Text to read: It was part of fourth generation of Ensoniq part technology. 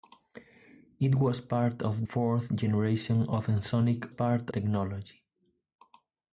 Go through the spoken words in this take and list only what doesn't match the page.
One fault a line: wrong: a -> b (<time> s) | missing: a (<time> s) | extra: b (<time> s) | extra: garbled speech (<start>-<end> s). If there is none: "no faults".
no faults